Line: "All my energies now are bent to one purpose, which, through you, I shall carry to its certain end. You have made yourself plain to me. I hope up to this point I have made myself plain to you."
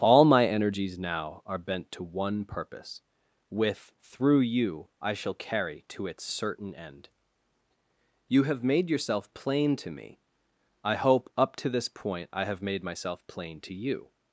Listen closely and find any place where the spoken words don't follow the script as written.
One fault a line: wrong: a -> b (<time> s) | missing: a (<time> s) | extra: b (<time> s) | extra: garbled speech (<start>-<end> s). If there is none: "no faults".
wrong: which -> with (3.5 s)